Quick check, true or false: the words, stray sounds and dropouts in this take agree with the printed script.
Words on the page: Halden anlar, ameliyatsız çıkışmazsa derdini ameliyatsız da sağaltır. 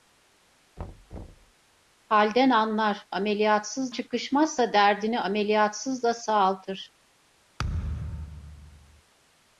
false